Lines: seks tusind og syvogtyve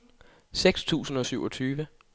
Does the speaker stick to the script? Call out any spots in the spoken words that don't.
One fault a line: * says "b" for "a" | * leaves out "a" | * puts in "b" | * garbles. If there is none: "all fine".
all fine